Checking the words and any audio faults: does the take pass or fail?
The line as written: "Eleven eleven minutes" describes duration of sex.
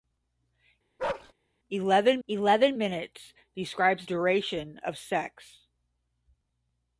fail